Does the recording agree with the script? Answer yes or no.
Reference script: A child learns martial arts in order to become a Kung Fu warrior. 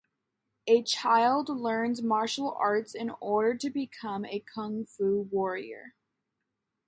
yes